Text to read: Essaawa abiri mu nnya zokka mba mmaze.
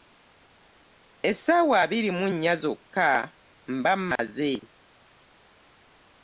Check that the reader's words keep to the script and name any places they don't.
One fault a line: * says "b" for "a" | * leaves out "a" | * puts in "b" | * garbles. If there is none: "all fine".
all fine